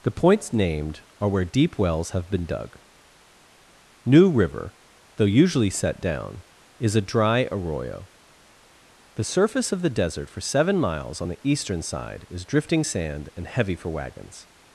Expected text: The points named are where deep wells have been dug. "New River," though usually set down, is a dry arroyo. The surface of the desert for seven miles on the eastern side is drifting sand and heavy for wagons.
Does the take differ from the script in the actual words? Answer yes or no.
no